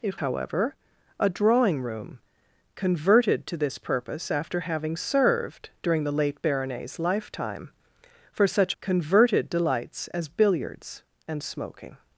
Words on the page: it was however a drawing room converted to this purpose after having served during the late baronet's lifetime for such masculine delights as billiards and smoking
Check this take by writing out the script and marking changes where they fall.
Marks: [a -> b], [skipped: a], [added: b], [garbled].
it [skipped: was] however a drawing room converted to this purpose after having served during the late baronet's lifetime for such [masculine -> converted] delights as billiards and smoking